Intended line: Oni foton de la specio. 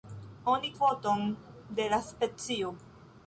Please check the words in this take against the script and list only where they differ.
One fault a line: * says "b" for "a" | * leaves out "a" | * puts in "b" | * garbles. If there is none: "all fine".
all fine